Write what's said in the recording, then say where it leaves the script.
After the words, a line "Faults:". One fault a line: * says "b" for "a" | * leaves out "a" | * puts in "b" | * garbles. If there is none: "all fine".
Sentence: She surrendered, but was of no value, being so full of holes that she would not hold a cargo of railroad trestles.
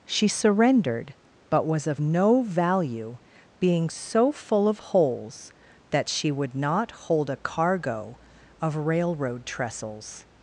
She surrendered, but was of no value, being so full of holes that she would not hold a cargo of railroad trestles.
Faults:
all fine